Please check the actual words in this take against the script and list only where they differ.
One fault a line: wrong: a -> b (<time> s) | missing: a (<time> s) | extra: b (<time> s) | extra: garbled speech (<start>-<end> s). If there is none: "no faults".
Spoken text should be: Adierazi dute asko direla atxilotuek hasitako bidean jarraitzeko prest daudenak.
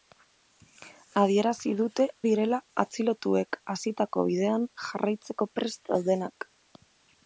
missing: asko (2.1 s)